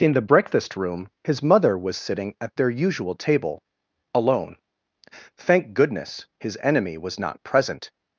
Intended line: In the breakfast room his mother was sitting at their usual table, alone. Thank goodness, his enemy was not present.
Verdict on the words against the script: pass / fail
pass